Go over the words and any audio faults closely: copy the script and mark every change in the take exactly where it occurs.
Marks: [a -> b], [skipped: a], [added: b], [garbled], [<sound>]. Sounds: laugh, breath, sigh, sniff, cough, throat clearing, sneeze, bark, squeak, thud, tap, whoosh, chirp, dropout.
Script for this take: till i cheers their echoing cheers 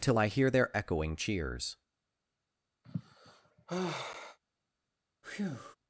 till i [cheers -> hear] their echoing cheers [sigh] [breath]